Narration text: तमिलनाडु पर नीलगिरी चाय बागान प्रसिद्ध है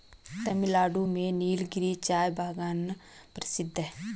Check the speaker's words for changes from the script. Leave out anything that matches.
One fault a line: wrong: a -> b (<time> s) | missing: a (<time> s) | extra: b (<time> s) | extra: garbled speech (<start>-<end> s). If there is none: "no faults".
wrong: पर -> में (1.1 s)